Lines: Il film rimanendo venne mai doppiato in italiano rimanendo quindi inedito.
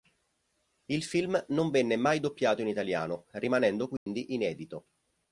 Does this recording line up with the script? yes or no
no